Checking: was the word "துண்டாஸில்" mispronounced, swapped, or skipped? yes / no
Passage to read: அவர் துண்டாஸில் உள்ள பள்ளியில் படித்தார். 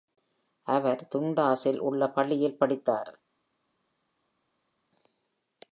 no